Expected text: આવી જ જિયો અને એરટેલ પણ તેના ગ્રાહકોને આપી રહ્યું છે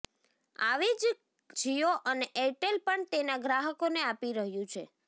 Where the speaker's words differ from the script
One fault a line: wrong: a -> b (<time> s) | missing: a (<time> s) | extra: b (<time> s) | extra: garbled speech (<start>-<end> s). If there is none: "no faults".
no faults